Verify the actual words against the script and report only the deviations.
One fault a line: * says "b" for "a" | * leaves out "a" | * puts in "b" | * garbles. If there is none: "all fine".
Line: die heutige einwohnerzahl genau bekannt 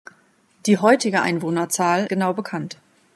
all fine